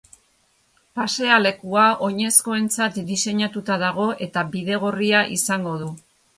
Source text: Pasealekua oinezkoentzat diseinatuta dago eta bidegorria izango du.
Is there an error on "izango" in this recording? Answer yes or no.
no